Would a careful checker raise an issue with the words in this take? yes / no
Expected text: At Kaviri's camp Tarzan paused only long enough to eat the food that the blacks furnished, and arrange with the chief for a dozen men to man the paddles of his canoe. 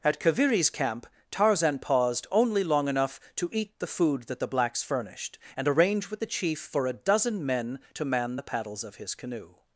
no